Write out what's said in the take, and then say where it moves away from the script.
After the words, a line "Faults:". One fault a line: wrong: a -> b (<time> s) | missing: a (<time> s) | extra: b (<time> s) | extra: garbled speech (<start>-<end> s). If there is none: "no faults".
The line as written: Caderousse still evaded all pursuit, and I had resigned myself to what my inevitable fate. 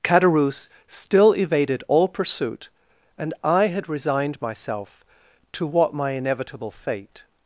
Caderousse still evaded all pursuit, and I had resigned myself to what my inevitable fate.
Faults:
no faults